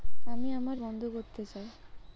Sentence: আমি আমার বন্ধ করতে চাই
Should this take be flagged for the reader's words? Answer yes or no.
no